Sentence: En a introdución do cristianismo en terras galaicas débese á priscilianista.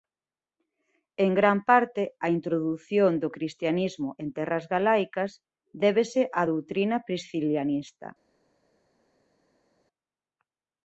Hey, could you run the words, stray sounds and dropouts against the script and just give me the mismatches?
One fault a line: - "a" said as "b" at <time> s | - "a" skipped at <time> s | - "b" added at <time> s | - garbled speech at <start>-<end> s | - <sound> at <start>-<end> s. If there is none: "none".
- "gran parte" added at 1.4 s
- "doutrina" added at 6.5 s